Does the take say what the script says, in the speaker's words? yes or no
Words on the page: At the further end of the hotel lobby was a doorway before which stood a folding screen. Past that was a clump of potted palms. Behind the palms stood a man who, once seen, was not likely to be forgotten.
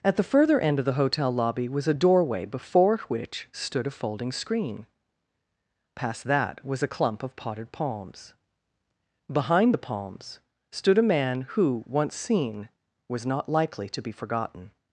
yes